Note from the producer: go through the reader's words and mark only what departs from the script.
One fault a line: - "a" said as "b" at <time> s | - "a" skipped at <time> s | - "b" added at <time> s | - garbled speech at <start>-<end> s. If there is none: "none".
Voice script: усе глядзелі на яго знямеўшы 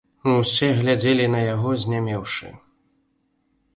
none